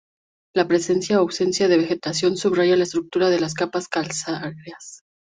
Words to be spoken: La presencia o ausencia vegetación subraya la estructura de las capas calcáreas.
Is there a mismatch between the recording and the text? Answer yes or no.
yes